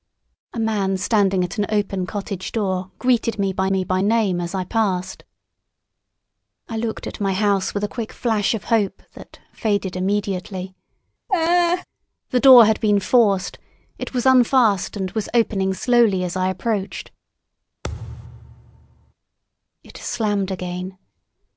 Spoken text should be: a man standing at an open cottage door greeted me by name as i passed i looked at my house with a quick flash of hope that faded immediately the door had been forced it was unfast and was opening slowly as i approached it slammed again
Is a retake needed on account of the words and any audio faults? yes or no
yes